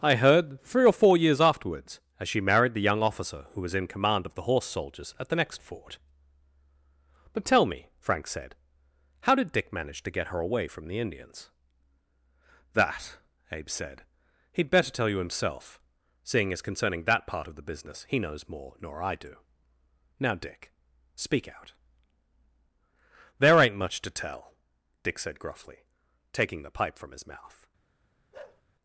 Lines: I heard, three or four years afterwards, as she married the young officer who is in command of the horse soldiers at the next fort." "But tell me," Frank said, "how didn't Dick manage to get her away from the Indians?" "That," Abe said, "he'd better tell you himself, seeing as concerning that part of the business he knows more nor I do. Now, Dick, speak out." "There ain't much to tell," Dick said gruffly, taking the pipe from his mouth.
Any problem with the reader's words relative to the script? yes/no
yes